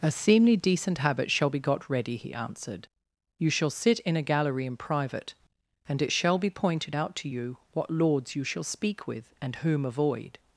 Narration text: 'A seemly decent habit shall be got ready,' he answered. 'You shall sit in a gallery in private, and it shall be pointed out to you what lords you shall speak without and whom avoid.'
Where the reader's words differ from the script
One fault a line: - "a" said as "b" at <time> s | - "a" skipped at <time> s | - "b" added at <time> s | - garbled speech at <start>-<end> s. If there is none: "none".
- "without" said as "with" at 9.1 s